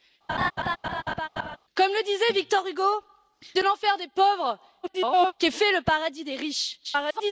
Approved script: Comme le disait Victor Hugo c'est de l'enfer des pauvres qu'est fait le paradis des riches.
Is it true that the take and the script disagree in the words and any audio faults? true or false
true